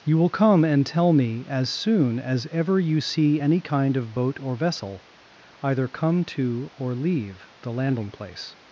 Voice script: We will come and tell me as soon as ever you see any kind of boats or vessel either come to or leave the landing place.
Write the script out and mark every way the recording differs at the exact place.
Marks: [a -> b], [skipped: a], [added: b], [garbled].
[We -> You] will come and tell me as soon as ever you see any kind of [boats -> boat] or vessel either come to or leave the landing place.